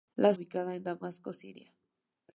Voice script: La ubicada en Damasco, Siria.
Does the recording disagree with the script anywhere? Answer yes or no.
no